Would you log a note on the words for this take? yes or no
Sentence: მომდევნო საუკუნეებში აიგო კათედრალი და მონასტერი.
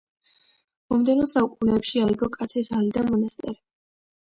no